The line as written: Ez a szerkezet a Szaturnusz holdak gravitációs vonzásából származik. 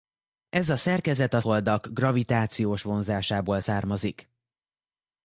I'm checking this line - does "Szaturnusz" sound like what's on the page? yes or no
no